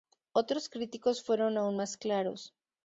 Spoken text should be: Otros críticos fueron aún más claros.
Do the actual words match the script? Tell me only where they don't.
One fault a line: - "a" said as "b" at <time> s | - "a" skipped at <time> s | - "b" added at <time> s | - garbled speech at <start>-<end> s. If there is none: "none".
none